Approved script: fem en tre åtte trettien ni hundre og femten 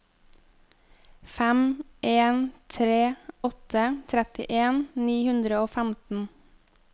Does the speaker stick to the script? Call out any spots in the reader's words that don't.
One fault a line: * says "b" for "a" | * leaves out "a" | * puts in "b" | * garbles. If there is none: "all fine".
all fine